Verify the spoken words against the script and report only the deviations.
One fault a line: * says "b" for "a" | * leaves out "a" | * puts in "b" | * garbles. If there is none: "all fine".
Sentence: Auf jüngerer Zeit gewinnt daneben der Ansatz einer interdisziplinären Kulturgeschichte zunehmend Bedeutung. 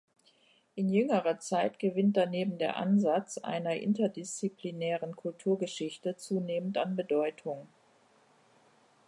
* says "In" for "Auf"
* puts in "an"